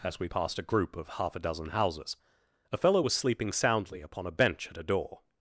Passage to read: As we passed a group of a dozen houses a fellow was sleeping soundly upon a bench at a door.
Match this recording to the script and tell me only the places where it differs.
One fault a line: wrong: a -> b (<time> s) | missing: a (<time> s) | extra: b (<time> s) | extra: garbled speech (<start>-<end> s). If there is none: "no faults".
extra: half (1.1 s)